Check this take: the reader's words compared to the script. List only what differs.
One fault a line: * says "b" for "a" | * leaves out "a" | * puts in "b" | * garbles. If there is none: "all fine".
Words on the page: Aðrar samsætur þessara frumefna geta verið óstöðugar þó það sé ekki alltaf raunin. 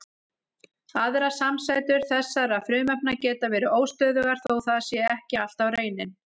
all fine